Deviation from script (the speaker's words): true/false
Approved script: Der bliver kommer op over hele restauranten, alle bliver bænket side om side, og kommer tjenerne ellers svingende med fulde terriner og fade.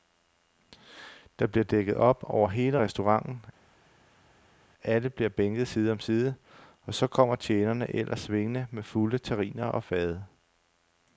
true